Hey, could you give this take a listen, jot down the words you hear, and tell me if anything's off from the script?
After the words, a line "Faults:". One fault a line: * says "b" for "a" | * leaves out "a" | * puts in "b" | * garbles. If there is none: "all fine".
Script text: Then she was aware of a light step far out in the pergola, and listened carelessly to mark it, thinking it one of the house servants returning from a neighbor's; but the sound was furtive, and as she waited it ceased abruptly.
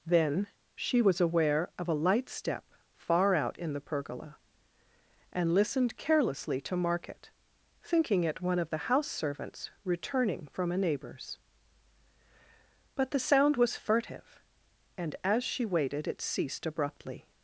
Then she was aware of a light step far out in the pergola, and listened carelessly to mark it, thinking it one of the house servants returning from a neighbor's; but the sound was furtive, and as she waited it ceased abruptly.
Faults:
all fine